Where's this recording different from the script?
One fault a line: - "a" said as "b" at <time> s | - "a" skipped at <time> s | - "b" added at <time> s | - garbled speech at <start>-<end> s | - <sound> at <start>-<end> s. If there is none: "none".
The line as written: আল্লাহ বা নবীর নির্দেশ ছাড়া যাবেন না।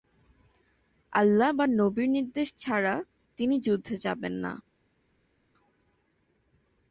- "তিনি যুদ্ধে" added at 3.4 s